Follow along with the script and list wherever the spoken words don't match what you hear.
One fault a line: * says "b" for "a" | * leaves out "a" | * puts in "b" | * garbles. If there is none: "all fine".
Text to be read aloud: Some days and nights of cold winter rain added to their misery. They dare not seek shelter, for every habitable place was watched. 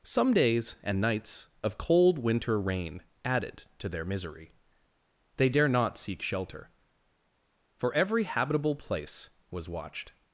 all fine